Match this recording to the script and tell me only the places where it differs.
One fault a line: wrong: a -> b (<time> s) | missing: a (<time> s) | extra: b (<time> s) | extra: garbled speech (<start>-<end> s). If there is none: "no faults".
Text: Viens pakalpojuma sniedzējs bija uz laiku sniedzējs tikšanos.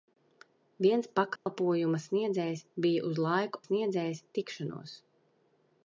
no faults